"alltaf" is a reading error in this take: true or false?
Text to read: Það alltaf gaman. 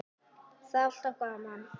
false